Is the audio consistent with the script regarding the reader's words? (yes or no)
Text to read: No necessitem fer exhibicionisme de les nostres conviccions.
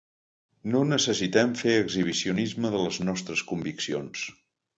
yes